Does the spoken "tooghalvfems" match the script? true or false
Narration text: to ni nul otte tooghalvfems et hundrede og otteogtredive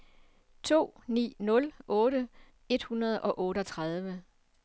false